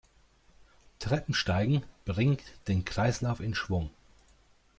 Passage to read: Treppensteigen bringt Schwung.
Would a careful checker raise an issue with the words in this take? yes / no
yes